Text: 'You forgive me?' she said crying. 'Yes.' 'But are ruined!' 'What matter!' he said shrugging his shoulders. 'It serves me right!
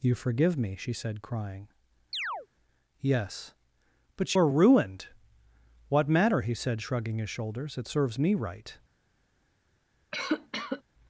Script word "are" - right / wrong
right